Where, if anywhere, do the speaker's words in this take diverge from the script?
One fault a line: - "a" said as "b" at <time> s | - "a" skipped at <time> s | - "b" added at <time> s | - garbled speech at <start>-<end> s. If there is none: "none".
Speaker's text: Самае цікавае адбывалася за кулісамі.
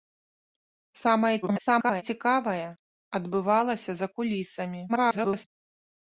- garbled speech at 1.4-2.0 s
- garbled speech at 4.9-5.4 s